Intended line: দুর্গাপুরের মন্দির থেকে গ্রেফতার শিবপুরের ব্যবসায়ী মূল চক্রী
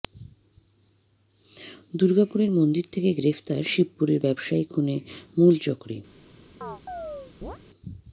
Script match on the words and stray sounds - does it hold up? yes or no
no